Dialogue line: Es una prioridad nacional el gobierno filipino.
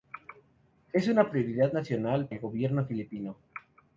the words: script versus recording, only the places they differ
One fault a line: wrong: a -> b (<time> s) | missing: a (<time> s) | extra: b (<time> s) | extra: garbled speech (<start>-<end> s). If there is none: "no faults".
no faults